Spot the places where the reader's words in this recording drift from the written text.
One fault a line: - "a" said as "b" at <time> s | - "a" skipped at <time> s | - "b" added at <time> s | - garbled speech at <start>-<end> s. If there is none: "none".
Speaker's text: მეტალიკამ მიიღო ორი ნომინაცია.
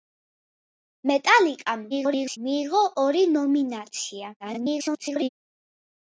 - garbled speech at 1.9-2.4 s
- garbled speech at 4.4-5.3 s